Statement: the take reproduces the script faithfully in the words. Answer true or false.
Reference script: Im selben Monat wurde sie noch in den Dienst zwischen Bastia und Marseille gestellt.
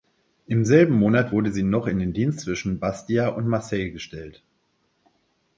true